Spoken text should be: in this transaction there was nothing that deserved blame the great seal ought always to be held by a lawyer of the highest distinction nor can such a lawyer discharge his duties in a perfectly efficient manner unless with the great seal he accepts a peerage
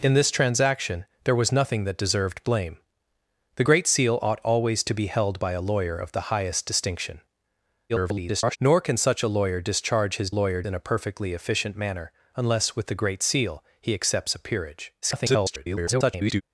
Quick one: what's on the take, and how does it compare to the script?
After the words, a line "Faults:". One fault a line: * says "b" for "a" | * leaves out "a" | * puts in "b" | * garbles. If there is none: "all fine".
in this transaction there was nothing that deserved blame the great seal ought always to be held by a lawyer of the highest distinction [garbled] nor can such a lawyer discharge his lawyer in a perfectly efficient manner unless with the great seal he accepts a peerage [garbled]
Faults:
* garbles
* says "lawyer" for "duties"
* garbles